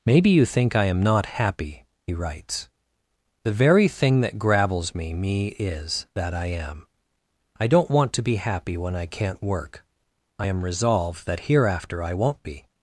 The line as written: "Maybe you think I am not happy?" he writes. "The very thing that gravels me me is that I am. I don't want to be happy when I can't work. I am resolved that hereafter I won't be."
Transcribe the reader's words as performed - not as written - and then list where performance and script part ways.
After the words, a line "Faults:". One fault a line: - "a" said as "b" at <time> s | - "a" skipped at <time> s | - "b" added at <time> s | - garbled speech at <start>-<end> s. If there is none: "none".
"Maybe you think I am not happy?" he writes. "The very thing that gravels me me is that I am. I don't want to be happy when I can't work. I am resolved that hereafter I won't be."
Faults:
none